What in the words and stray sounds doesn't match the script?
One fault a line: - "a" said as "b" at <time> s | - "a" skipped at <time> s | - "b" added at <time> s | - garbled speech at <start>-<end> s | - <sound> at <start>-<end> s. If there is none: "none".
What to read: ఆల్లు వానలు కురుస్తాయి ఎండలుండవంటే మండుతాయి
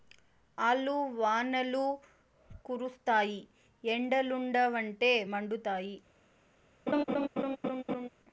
- laugh at 6.9-8.1 s